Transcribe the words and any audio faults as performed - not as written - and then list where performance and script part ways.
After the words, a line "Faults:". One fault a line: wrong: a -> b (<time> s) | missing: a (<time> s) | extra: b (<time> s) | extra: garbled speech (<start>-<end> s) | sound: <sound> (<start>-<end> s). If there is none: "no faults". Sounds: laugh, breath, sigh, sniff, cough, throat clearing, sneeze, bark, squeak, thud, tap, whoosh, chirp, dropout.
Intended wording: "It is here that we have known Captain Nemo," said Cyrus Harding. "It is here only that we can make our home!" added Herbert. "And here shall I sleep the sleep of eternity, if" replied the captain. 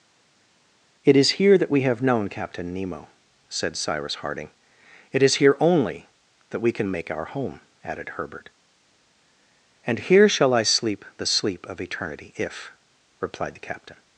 "It is here that we have known Captain Nemo," said Cyrus Harding. "It is here only that we can make our home!" added Herbert. "And here shall I sleep the sleep of eternity, if" replied the captain.
Faults:
no faults